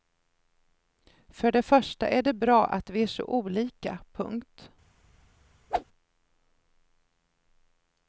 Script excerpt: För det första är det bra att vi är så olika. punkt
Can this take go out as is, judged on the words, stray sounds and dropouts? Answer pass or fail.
fail